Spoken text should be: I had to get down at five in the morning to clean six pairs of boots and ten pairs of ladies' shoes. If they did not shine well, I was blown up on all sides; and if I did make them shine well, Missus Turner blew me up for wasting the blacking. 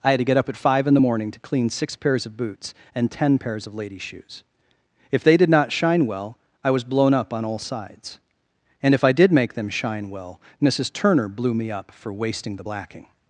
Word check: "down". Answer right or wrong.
wrong